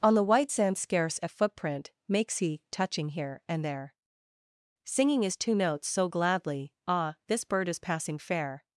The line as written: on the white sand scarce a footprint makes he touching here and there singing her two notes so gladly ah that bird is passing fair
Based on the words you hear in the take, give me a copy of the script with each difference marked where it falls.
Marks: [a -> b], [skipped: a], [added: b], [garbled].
on the white sand scarce a footprint makes he touching here and there singing [her -> his] two notes so gladly ah [that -> this] bird is passing fair